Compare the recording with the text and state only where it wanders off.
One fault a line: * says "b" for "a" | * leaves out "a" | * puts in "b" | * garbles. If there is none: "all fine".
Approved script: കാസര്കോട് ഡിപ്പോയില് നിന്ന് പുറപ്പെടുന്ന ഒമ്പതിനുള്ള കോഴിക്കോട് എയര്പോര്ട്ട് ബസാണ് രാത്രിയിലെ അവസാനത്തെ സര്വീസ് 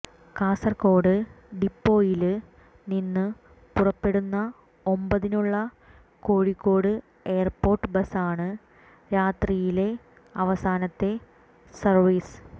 all fine